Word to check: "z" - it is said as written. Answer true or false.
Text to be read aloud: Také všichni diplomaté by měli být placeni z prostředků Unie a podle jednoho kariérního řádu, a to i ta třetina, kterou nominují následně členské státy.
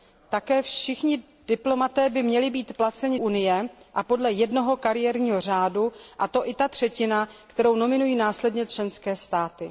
false